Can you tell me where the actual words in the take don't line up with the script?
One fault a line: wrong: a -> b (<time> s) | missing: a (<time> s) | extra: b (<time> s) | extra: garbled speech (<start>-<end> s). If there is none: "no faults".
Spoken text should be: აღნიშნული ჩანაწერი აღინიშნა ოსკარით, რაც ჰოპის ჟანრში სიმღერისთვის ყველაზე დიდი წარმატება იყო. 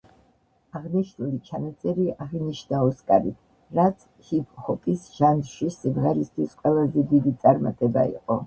extra: ჰიპ (4.3 s)